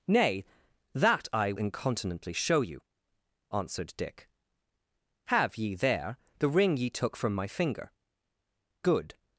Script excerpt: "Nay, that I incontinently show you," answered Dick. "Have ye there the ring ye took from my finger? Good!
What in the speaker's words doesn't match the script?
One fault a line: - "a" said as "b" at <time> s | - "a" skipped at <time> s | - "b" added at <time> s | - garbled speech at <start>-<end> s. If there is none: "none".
none